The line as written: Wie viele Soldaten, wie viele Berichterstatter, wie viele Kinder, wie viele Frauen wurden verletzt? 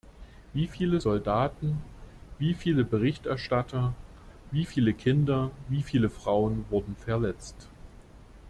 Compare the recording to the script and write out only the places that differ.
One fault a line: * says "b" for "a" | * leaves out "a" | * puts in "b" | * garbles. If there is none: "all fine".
all fine